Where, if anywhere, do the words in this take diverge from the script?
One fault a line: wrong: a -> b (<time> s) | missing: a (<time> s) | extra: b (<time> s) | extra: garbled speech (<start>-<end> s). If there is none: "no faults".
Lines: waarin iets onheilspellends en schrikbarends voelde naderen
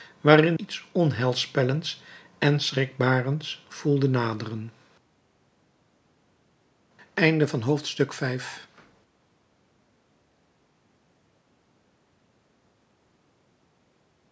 no faults